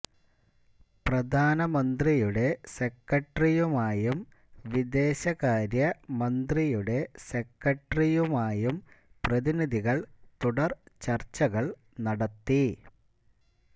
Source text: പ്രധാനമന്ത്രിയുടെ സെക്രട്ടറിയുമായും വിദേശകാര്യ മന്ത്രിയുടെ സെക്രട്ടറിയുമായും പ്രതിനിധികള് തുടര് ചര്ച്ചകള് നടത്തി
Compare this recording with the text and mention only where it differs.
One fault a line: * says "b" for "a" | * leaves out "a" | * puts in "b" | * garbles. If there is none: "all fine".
all fine